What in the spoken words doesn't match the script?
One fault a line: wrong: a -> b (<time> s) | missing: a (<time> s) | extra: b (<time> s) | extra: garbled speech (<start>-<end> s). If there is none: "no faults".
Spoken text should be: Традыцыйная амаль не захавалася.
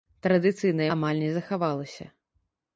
no faults